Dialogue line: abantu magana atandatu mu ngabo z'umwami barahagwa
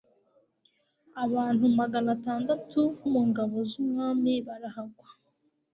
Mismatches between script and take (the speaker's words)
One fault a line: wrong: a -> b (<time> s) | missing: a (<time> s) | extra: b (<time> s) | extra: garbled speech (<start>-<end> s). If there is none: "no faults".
no faults